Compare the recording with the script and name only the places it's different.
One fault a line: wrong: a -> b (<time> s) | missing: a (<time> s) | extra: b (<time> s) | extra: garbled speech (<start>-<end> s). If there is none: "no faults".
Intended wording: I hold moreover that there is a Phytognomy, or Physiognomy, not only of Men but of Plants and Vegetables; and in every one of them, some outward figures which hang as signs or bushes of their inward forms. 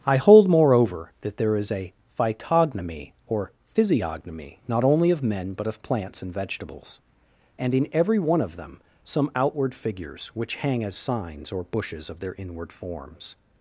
no faults